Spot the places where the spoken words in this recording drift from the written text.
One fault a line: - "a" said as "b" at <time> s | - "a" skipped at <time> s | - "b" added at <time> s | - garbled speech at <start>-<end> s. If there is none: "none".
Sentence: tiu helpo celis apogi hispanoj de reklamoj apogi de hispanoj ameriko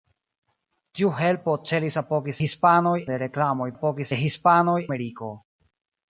none